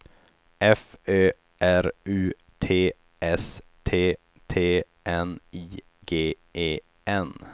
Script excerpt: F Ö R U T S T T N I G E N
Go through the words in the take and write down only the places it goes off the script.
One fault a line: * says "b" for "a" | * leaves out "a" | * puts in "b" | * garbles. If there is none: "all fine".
all fine